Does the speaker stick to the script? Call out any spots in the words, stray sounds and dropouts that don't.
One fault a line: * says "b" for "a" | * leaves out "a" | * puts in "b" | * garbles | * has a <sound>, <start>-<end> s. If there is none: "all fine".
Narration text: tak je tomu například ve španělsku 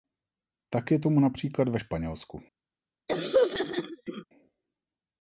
* has a throat clearing, 3.1-4.2 s